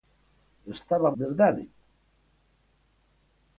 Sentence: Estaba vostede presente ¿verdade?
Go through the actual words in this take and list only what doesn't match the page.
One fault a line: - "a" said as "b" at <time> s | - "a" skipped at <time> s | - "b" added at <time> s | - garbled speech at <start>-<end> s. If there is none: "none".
- "vostede presente" skipped at 1.1 s